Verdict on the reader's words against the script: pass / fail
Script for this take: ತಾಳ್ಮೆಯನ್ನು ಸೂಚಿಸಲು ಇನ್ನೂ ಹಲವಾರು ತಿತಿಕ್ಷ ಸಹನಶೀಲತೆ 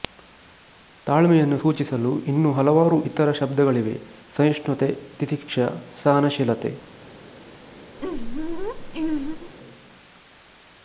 fail